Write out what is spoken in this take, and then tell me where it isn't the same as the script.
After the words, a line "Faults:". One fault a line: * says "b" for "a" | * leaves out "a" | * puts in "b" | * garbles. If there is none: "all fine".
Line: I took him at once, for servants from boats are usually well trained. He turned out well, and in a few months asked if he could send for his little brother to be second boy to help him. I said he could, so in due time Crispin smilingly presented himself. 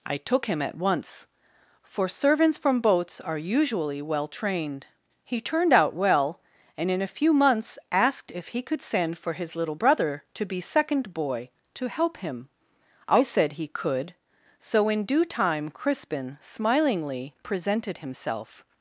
I took him at once, for servants from boats are usually well trained. He turned out well, and in a few months asked if he could send for his little brother to be second boy to help him. I said he could, so in due time Crispin smilingly presented himself.
Faults:
all fine